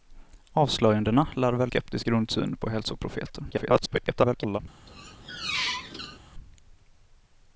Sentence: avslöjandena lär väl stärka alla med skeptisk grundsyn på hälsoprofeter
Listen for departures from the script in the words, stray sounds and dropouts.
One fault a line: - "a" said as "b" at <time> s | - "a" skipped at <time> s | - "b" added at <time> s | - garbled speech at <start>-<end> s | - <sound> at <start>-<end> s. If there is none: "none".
- "stärka alla med" skipped at 1.7 s
- garbled speech at 3.5-4.6 s
- squeak at 4.9-6.2 s